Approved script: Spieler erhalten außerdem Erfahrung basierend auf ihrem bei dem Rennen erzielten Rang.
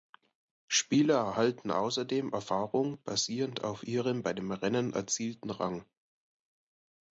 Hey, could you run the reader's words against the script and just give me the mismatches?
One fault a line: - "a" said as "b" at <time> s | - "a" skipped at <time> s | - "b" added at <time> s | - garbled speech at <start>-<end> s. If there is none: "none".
none